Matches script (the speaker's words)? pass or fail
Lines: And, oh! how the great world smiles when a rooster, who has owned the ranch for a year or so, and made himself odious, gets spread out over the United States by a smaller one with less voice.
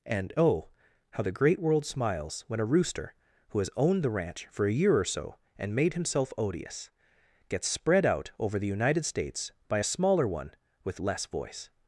pass